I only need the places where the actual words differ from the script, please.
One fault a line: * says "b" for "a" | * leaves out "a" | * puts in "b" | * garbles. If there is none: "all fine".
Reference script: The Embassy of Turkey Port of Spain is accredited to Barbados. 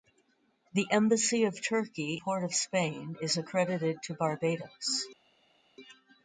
all fine